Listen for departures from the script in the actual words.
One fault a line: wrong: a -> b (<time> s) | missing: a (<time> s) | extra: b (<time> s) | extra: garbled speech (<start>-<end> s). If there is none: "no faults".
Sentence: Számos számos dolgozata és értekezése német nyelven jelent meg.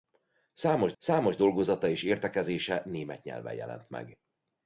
no faults